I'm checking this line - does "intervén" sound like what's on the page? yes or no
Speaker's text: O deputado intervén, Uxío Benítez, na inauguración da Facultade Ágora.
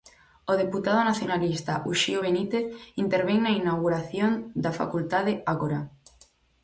no